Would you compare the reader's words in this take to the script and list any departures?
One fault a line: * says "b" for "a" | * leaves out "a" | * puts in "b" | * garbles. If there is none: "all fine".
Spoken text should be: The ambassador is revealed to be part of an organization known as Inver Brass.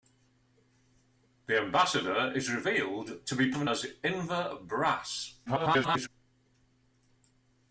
* leaves out "part"
* leaves out "organization known"
* garbles